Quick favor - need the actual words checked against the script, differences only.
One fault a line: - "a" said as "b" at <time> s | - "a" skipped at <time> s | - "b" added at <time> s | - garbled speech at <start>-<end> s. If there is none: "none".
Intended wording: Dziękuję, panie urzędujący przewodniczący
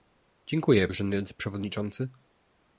- "panie" skipped at 0.9 s